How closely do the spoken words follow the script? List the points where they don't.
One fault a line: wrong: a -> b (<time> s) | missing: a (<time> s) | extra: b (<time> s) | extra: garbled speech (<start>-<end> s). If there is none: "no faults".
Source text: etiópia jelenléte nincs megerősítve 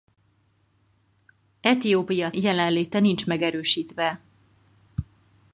no faults